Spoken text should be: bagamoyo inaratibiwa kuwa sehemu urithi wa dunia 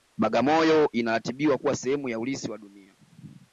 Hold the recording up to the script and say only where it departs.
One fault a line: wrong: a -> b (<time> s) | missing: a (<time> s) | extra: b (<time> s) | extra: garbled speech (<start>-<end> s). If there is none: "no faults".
extra: ya (2.1 s)